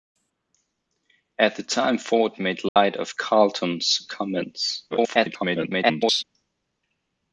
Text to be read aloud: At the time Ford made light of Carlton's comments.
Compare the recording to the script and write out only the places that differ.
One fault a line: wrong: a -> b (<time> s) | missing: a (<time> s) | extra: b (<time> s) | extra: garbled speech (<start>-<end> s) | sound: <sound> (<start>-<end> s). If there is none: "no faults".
sound: dropout (2.7-2.8 s)
extra: garbled speech (4.9-6.2 s)